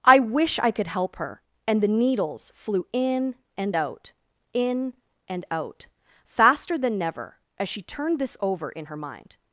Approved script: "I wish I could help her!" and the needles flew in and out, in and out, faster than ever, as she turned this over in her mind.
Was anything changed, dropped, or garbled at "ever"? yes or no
yes